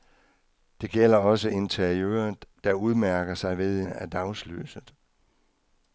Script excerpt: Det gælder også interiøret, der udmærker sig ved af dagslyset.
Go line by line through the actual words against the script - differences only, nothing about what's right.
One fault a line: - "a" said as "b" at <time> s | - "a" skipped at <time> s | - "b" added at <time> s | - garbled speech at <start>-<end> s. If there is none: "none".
none